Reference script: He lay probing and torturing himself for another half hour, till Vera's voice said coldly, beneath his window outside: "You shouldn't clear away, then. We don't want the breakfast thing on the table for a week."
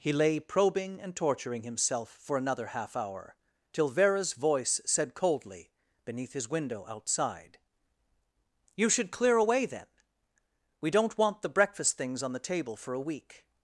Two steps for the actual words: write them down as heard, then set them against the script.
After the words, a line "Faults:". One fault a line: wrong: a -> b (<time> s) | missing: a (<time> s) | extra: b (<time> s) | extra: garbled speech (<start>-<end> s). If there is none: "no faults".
He lay probing and torturing himself for another half hour, till Vera's voice said coldly, beneath his window outside: "You should clear away, then. We don't want the breakfast things on the table for a week."
Faults:
wrong: shouldn't -> should (8.9 s)
wrong: thing -> things (12.0 s)